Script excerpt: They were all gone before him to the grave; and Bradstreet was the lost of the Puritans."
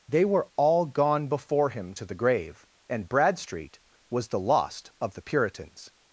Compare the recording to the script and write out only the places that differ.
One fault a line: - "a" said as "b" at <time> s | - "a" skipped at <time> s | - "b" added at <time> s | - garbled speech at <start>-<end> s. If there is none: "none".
none